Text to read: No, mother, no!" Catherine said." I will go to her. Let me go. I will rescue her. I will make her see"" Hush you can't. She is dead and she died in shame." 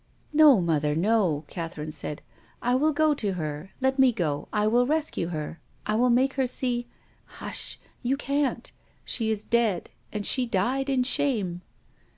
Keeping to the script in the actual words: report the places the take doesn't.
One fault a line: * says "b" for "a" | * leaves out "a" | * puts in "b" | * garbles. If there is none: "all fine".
all fine